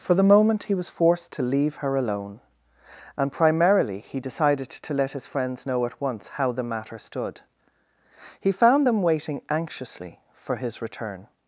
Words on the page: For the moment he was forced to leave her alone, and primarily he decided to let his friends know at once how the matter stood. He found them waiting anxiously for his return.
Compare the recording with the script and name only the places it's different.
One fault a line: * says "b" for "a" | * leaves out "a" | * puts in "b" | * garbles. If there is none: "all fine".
all fine